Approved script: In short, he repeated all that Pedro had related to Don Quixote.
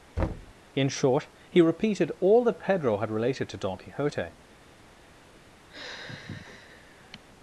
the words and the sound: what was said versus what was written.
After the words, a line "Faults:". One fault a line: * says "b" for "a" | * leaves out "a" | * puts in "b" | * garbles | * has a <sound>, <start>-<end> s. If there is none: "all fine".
In short, he repeated all that Pedro had related to Don Quixote.
Faults:
* has a thud, 0.2-0.5 s
* has a sigh, 5.7-7.2 s